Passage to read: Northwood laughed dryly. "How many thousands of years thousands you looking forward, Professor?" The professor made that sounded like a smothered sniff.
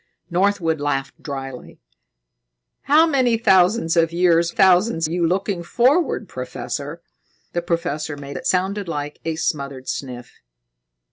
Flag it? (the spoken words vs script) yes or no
no